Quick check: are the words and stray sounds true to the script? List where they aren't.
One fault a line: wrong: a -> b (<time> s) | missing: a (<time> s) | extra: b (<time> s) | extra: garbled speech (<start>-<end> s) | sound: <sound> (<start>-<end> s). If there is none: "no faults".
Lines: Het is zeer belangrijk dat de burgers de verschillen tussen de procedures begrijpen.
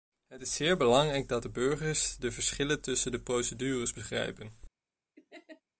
sound: laugh (5.2-5.6 s)